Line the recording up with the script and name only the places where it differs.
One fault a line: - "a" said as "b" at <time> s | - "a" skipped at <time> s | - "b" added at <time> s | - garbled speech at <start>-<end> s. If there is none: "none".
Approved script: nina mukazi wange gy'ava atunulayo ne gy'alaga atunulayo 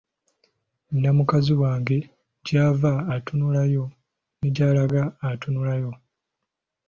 none